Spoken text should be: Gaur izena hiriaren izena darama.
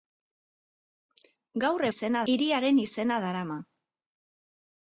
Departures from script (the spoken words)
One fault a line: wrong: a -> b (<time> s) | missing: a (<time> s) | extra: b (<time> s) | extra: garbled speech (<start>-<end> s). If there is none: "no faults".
no faults